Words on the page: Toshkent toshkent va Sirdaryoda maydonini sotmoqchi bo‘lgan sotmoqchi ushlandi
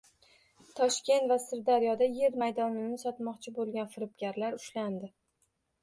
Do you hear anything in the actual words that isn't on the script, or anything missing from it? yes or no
yes